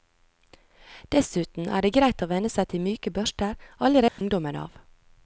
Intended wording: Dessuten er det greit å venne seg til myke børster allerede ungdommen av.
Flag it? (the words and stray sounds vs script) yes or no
yes